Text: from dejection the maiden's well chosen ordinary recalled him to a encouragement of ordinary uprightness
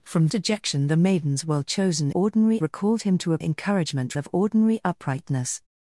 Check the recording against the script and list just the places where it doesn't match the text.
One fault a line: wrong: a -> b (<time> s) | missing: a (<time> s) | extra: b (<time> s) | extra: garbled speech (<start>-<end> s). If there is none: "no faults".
no faults